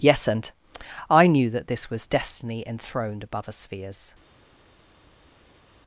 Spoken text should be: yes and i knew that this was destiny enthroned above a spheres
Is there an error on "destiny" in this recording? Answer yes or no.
no